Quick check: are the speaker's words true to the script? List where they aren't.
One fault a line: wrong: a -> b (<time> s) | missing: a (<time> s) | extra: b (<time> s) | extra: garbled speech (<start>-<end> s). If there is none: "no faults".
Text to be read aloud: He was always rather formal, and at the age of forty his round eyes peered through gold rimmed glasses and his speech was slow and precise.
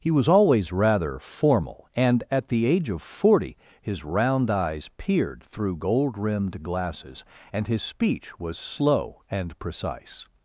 no faults